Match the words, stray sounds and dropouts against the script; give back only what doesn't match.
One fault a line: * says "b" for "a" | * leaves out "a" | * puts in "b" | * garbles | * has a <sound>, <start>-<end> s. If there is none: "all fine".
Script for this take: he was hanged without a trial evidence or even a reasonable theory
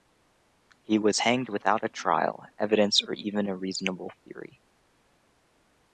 all fine